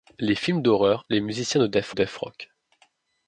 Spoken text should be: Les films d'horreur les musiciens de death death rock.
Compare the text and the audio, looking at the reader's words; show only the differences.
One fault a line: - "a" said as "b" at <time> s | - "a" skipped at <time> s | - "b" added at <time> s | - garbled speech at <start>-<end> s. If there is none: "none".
none